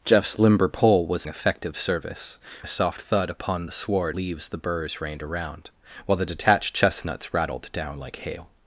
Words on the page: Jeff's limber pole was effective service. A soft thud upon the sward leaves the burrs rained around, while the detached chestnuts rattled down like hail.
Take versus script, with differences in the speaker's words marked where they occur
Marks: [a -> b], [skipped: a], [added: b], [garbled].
Jeff's limber pole was effective service. A soft thud upon the sward leaves the burrs rained around, while the detached chestnuts rattled down like hail.